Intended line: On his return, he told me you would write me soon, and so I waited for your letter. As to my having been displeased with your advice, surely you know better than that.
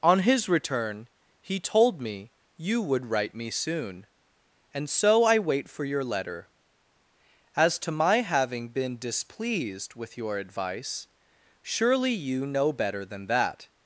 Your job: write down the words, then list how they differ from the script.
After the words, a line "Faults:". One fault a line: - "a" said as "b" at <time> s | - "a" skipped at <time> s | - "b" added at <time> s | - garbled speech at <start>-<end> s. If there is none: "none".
On his return, he told me you would write me soon, and so I wait for your letter. As to my having been displeased with your advice, surely you know better than that.
Faults:
- "waited" said as "wait" at 5.4 s